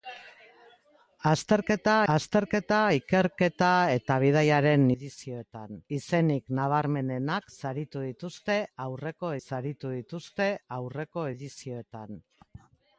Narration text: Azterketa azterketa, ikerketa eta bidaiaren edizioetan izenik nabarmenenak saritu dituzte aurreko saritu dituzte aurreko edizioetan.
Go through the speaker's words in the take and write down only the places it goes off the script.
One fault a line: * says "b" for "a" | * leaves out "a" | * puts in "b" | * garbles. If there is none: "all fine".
all fine